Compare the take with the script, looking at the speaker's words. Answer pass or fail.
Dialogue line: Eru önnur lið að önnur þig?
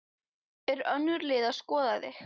fail